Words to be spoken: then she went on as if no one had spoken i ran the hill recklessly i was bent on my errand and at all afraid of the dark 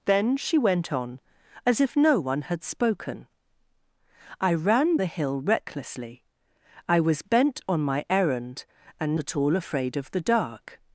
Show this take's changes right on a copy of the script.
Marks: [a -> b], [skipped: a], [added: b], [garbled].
then she went on as if no one had spoken i ran the hill recklessly i was bent on my errand and at all afraid of the dark